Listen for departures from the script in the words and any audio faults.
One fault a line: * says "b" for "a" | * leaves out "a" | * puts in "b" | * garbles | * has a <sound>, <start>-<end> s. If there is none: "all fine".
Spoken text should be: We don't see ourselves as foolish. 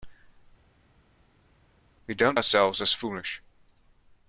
* leaves out "see"